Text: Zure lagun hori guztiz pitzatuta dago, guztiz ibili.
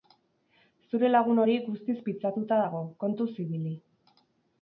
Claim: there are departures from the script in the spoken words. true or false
true